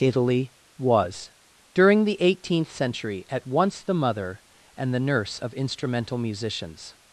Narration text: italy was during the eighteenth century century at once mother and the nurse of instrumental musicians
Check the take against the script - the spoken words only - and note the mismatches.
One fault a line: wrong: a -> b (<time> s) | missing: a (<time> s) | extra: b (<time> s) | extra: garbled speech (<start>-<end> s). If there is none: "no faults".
missing: century (3.2 s)
extra: the (3.8 s)